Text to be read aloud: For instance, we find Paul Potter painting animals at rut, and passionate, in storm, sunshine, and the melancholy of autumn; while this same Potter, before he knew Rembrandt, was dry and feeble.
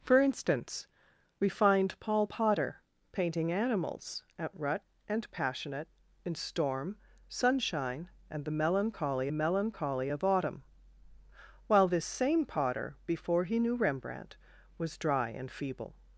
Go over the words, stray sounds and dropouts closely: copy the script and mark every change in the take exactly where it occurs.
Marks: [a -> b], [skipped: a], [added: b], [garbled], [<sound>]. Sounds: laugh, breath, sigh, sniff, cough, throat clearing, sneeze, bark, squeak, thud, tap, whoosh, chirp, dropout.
For instance, we find Paul Potter painting animals at rut, and passionate, in storm, sunshine, and the melancholy [added: melancholy] of autumn; while this same Potter, before he knew Rembrandt, was dry and feeble.